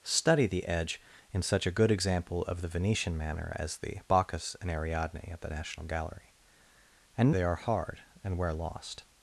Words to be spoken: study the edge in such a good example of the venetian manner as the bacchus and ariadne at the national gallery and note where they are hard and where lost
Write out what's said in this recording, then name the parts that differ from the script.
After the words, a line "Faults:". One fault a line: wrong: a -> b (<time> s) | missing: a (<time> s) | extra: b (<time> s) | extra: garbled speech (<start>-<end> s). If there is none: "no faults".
study the edge in such a good example of the venetian manner as the bacchus and ariadne at the national gallery and they are hard and where lost
Faults:
missing: note where (7.3 s)